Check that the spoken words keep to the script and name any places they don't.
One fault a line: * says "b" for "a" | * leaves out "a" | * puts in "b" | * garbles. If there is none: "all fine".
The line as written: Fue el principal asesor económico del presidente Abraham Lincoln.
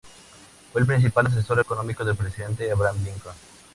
all fine